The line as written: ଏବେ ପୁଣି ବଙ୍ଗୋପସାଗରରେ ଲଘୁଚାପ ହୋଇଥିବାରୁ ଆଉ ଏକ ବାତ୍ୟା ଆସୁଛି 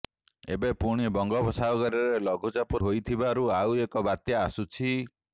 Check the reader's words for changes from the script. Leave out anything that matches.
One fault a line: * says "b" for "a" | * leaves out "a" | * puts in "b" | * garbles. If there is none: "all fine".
all fine